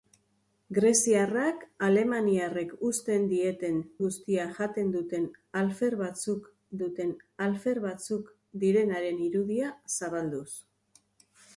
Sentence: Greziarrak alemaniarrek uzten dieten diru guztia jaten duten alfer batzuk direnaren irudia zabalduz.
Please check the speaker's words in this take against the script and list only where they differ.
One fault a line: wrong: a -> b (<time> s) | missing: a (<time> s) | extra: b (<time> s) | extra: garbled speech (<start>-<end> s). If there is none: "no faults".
missing: diru (3.8 s)
extra: duten alfer batzuk (6.8 s)